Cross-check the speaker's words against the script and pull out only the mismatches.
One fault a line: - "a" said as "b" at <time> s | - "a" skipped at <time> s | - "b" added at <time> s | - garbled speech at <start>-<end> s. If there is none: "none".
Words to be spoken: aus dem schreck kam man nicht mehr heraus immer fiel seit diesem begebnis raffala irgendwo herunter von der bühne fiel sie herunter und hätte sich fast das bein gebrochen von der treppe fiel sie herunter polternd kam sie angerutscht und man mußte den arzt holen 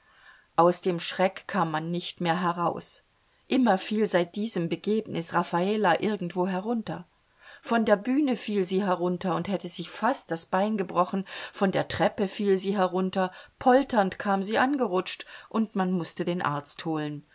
none